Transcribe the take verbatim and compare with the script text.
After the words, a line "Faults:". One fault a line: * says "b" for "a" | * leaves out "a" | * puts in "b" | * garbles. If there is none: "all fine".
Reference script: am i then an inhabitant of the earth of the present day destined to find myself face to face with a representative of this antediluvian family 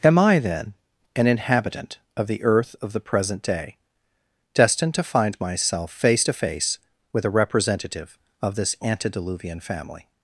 am i then an inhabitant of the earth of the present day destined to find myself face to face with a representative of this antediluvian family
Faults:
all fine